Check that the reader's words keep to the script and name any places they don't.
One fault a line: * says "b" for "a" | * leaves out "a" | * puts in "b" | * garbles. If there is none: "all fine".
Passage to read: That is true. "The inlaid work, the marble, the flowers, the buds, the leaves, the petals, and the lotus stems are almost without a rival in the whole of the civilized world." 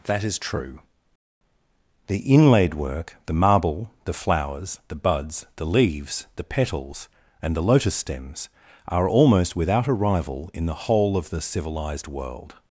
all fine